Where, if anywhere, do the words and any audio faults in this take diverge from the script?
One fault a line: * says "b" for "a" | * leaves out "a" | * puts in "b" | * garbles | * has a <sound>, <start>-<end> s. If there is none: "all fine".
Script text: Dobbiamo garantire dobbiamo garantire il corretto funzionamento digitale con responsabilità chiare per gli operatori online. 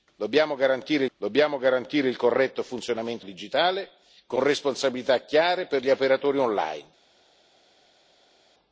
all fine